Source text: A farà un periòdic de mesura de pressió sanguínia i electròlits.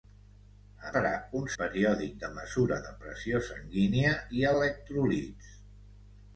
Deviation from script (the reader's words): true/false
false